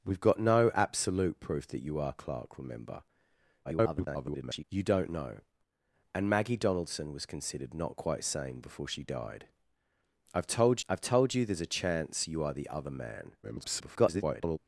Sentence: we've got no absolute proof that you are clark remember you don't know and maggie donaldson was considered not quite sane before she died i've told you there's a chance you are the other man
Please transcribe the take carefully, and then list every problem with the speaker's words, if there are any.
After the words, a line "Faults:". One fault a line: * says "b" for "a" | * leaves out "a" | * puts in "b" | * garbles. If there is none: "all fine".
we've got no absolute proof that you are clark remember [garbled] you don't know and maggie donaldson was considered not quite sane before she died i've told i've told you there's a chance you are the other man [garbled]
Faults:
* garbles
* puts in "i've told"
* garbles